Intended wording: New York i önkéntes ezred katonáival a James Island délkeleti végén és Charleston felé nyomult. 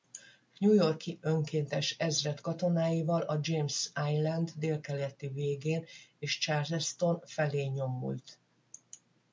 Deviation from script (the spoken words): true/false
false